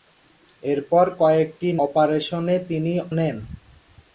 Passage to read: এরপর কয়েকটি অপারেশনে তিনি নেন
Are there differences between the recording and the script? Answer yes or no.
no